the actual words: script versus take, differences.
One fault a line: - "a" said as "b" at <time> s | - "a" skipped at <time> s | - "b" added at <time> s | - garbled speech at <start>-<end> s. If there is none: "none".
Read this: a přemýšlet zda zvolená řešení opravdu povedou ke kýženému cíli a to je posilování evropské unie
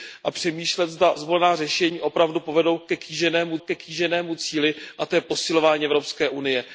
- "ke kýženému" added at 3.6 s